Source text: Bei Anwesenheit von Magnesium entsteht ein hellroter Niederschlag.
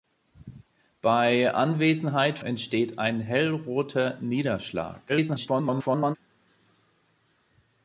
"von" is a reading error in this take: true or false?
true